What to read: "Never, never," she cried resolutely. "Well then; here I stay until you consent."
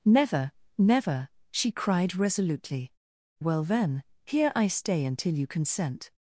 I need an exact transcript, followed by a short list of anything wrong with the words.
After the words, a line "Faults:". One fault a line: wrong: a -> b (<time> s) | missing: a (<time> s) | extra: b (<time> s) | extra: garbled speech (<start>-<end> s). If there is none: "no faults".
"Never, never," she cried resolutely. "Well then; here I stay until you consent."
Faults:
no faults